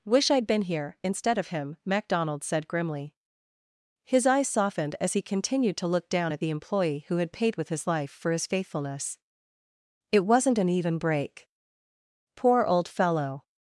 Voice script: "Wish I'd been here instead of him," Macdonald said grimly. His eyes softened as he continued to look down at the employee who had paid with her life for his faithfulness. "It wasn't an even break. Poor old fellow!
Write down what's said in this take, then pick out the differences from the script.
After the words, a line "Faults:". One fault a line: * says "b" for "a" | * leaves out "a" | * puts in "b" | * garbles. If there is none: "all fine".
"Wish I'd been here instead of him," Macdonald said grimly. His eyes softened as he continued to look down at the employee who had paid with his life for his faithfulness. "It wasn't an even break. Poor old fellow!
Faults:
* says "his" for "her"